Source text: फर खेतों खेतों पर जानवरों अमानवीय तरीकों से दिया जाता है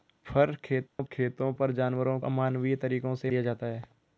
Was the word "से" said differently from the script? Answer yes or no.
no